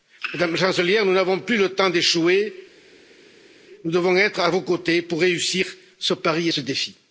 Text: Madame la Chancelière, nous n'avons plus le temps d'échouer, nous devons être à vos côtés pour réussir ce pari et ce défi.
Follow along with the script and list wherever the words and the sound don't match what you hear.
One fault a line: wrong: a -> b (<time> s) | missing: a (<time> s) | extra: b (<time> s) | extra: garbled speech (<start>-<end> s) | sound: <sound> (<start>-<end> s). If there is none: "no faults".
no faults